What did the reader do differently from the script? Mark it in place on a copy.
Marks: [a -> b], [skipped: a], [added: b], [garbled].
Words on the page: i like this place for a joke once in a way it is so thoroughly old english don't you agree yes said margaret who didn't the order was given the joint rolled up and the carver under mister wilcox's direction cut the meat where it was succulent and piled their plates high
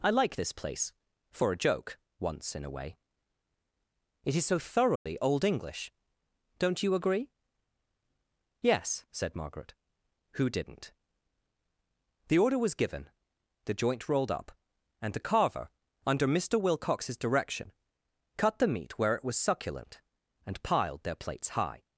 i like this place for a joke once in a way it is so thoroughly old english don't you agree yes said margaret who didn't the order was given the joint rolled up and the carver under mister wilcox's direction cut the meat where it was succulent and piled their plates high